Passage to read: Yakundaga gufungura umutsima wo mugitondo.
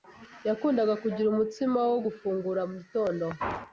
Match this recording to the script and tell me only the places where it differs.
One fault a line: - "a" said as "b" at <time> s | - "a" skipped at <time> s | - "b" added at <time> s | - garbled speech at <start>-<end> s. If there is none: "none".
- "gufungura" said as "kugira" at 1.0 s
- "gufungura" added at 2.0 s